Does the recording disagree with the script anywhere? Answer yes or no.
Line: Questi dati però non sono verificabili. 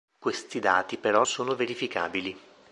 yes